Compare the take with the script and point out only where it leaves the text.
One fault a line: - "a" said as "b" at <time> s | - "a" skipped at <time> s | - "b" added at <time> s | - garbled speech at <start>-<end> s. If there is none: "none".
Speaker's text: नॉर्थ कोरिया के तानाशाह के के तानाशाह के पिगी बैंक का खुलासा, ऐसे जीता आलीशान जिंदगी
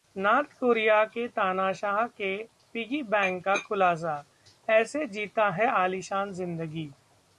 - "के तानाशाह के" skipped at 2.4 s
- "है" added at 5.5 s